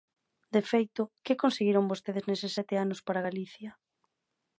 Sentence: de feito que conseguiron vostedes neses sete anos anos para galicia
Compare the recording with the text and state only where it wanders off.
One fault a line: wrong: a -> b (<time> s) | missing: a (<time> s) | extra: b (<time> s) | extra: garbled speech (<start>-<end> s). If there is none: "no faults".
missing: anos (3.0 s)